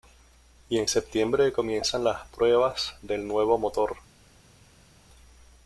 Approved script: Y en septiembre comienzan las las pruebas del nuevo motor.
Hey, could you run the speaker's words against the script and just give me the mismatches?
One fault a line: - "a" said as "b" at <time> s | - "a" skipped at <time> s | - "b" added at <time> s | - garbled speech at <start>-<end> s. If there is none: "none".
- "las" skipped at 2.2 s